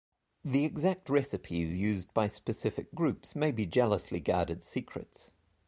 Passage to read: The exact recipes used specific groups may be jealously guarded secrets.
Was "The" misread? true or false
false